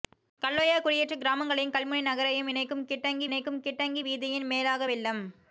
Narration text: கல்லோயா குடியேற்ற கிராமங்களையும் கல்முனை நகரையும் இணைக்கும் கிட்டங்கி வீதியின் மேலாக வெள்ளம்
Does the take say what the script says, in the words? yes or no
no